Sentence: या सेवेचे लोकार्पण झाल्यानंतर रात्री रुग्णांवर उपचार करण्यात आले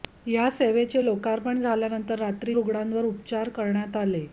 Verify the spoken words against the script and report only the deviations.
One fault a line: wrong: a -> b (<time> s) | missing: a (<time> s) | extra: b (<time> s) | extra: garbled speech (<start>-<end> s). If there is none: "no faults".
no faults